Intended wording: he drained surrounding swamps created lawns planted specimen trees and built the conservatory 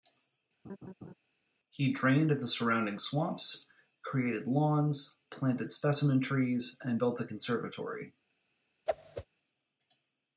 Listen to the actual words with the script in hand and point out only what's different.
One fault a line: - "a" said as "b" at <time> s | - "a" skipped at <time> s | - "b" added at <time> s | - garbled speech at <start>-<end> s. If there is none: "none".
- "the" added at 2.3 s